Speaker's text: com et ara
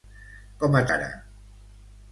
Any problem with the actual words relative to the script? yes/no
no